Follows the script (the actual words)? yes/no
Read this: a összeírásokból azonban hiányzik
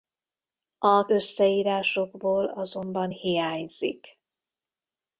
yes